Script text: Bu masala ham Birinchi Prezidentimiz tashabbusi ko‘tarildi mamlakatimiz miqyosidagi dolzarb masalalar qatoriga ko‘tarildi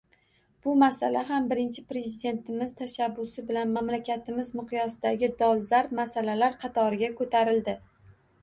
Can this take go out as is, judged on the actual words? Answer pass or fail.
fail